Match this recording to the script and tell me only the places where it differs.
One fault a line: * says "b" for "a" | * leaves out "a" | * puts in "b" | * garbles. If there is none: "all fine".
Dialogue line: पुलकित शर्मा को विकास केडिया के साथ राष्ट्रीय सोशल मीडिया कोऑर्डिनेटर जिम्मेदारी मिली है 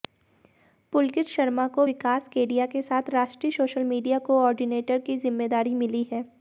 * puts in "की"